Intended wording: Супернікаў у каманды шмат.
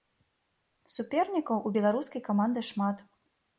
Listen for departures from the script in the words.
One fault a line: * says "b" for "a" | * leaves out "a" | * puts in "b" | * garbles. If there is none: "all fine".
* puts in "беларускай"